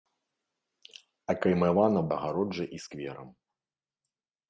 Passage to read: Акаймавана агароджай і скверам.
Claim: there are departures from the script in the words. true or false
false